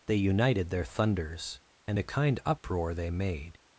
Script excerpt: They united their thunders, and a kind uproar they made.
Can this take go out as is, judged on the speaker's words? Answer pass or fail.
pass